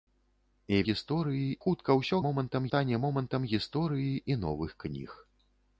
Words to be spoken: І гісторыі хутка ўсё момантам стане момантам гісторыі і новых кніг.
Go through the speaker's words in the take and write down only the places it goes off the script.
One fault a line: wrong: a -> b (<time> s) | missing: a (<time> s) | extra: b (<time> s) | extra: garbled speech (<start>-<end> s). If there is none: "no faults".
no faults